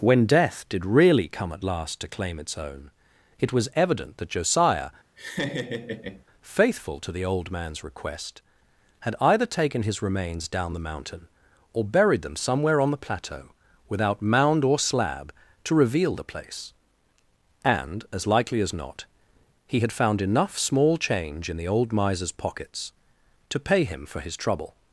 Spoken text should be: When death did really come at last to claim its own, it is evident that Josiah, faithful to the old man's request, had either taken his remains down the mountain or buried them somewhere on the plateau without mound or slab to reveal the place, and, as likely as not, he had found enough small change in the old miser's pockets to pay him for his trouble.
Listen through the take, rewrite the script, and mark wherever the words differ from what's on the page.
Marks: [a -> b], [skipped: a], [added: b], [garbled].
When death did really come at last to claim its own, it [is -> was] evident that Josiah, faithful to the old man's request, had either taken his remains down the mountain or buried them somewhere on the plateau without mound or slab to reveal the place, and, as likely as not, he had found enough small change in the old miser's pockets to pay him for his trouble.